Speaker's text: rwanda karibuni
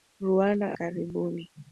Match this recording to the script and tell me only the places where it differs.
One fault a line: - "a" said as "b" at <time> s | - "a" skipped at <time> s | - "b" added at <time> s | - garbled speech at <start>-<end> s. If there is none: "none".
none